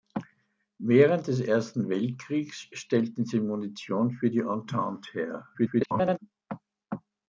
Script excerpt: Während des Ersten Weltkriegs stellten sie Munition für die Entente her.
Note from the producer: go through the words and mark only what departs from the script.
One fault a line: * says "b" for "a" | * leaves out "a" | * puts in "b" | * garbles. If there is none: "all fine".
* garbles